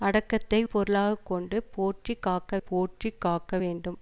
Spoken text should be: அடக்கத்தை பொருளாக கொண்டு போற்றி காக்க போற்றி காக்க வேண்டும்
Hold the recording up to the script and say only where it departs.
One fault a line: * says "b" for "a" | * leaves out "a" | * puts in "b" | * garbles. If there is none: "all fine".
all fine